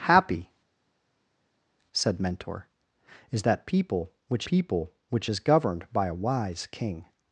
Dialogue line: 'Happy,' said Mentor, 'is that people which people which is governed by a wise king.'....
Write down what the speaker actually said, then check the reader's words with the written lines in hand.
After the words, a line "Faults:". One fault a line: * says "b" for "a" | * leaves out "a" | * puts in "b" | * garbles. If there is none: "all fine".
'Happy,' said Mentor, 'is that people which people which is governed by a wise king.'....
Faults:
all fine